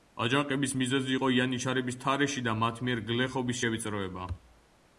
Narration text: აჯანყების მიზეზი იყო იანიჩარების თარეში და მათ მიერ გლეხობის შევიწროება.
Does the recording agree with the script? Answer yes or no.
yes